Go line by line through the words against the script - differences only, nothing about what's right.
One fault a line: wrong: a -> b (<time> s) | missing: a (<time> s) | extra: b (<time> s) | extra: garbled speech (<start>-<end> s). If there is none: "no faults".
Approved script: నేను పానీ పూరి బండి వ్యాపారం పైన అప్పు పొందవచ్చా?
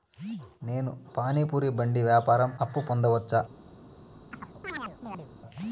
missing: పైన (2.5 s)